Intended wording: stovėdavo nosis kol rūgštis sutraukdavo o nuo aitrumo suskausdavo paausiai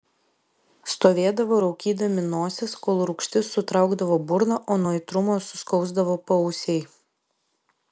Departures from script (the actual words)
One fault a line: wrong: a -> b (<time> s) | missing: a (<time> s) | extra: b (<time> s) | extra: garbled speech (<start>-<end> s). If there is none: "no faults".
extra: raukydami (1.6 s)
extra: burną (4.3 s)